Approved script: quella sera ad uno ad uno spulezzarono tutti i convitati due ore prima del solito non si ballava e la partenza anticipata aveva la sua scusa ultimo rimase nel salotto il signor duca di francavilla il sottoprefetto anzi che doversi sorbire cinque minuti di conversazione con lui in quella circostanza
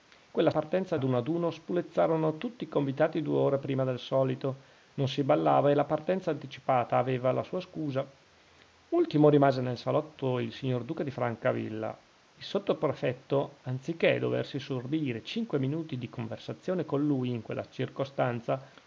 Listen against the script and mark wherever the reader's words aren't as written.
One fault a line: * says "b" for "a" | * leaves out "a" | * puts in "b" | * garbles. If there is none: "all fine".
* says "partenza" for "sera"